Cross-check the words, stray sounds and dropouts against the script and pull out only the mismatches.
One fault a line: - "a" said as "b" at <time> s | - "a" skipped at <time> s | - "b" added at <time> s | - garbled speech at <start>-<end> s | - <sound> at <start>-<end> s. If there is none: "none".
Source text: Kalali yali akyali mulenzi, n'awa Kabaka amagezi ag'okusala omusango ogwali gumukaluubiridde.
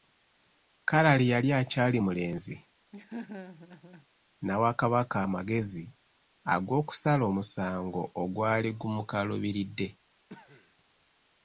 - laugh at 2.9-4.1 s
- cough at 10.3-10.8 s